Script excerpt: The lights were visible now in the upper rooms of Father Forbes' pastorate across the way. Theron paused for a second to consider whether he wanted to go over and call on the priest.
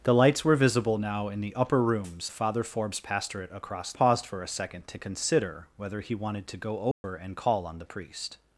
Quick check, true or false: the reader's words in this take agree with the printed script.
false